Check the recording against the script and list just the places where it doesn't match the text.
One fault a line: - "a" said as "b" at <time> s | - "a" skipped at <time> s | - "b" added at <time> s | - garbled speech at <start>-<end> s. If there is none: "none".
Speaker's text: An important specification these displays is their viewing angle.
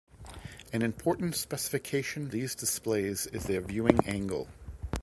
none